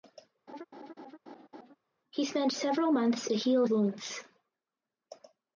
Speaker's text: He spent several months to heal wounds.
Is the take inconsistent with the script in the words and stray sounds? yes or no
yes